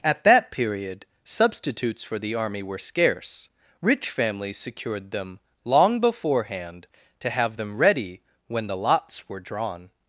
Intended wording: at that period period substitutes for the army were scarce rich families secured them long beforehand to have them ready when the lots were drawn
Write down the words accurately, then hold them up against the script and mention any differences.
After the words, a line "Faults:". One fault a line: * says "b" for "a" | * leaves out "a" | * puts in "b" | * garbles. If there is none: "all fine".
at that period substitutes for the army were scarce rich families secured them long beforehand to have them ready when the lots were drawn
Faults:
* leaves out "period"